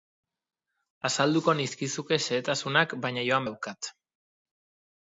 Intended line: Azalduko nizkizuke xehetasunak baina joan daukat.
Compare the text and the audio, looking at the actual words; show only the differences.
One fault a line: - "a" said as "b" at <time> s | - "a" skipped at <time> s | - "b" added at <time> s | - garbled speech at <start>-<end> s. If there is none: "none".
none